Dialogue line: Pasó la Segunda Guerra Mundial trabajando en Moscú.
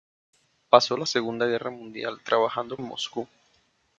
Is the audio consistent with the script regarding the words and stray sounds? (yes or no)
yes